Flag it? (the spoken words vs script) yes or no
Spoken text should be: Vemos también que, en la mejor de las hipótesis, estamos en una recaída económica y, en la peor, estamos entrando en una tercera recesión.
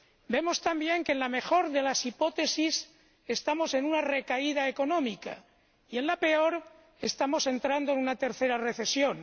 no